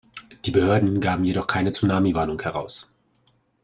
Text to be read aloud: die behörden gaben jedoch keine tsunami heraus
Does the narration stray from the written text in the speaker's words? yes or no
yes